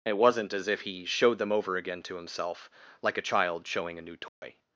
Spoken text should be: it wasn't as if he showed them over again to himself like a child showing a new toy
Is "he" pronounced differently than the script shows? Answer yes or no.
no